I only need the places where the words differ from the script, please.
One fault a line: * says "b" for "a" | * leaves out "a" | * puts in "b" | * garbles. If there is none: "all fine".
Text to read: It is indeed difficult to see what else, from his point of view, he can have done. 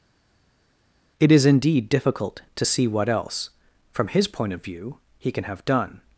all fine